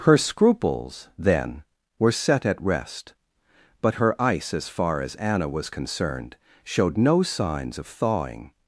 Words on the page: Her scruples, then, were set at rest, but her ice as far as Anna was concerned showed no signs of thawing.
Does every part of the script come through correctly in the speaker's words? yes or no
yes